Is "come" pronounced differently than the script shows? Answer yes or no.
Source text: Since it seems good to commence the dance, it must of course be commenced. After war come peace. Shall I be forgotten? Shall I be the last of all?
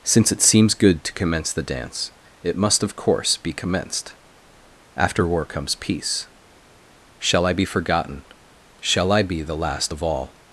yes